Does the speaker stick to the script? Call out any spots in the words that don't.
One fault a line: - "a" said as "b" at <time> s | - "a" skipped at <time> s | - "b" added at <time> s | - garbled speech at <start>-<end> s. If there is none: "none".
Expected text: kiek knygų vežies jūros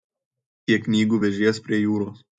- "prie" added at 1.7 s